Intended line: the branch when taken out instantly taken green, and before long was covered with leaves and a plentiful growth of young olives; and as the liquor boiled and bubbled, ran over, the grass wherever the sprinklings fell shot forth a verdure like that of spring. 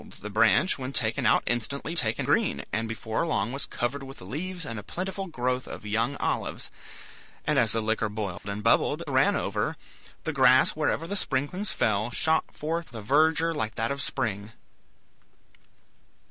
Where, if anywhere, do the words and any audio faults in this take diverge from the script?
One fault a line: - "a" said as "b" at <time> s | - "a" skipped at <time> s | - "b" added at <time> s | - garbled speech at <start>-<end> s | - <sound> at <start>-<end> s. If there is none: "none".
- dropout at 8.4-8.4 s